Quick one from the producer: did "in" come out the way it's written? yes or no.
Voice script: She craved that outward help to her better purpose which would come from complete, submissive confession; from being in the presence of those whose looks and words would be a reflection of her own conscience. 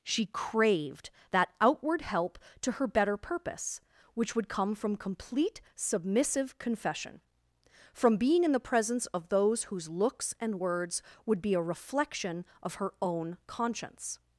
yes